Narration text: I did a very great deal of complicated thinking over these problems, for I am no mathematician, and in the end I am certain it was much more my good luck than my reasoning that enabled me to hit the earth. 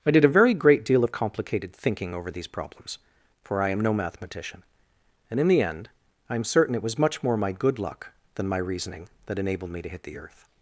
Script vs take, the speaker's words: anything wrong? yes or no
no